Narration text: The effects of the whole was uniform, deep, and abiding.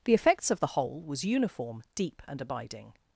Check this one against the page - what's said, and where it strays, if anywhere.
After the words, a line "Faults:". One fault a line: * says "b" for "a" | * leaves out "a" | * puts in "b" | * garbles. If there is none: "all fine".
The effects of the whole was uniform, deep, and abiding.
Faults:
all fine